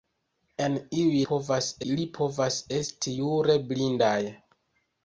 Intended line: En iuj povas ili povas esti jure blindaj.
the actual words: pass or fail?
pass